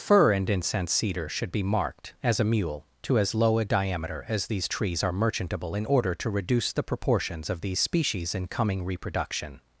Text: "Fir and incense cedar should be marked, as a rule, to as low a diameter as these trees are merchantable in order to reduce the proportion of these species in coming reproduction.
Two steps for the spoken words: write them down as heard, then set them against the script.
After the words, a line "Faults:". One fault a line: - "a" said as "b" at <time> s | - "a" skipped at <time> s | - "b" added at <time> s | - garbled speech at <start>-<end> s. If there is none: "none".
"Fir and incense cedar should be marked, as a mule, to as low a diameter as these trees are merchantable in order to reduce the proportions of these species in coming reproduction.
Faults:
- "rule" said as "mule" at 2.4 s
- "proportion" said as "proportions" at 6.8 s